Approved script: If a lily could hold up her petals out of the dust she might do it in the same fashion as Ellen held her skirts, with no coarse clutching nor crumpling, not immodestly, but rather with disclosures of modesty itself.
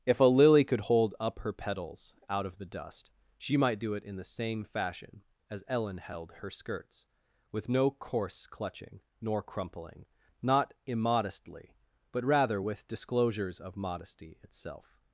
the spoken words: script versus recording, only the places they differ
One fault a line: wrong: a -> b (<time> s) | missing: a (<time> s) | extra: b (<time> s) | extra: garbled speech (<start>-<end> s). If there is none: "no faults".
no faults